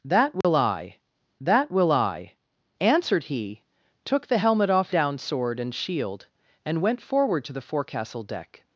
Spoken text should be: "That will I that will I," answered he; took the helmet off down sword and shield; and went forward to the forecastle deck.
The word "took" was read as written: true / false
true